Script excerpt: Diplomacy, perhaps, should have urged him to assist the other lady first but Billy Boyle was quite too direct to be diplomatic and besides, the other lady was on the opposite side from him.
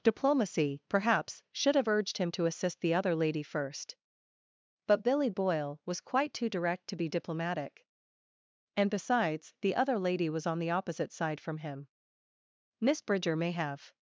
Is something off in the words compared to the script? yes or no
yes